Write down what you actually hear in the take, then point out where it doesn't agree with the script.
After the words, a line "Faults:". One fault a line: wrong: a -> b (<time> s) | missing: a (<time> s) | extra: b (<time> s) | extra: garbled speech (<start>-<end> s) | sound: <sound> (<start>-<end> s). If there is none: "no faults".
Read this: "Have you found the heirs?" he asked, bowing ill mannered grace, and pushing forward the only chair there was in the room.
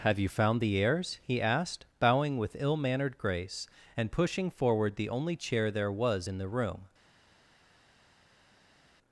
"Have you found the heirs?" he asked, bowing with ill mannered grace, and pushing forward the only chair there was in the room.
Faults:
extra: with (2.4 s)